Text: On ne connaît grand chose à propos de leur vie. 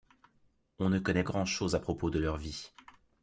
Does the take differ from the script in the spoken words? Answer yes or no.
no